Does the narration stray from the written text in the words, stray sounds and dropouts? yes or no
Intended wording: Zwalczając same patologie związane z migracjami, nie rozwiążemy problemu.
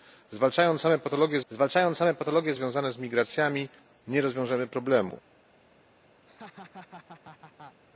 yes